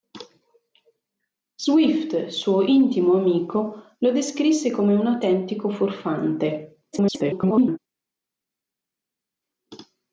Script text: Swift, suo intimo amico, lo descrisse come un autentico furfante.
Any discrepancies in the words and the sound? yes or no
yes